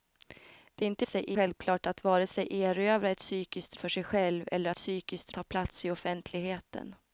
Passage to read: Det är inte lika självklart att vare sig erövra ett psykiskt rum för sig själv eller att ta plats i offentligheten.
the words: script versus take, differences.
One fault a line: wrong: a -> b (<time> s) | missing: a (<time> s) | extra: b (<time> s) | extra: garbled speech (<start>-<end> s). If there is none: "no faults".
wrong: lika -> sig (1.0 s)
missing: rum (3.8 s)
wrong: att -> psykiskt (4.7 s)